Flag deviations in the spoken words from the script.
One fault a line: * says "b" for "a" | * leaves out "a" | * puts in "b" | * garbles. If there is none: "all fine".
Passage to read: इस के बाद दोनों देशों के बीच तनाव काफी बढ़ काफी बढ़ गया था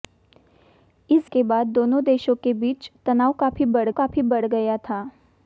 all fine